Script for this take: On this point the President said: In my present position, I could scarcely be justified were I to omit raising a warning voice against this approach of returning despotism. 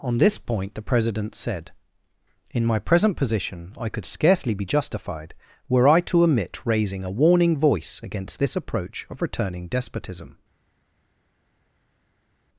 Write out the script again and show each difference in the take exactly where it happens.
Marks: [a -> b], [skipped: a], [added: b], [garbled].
On this point the President said: In my present position, I could scarcely be justified were I to omit raising a warning voice against this approach of returning despotism.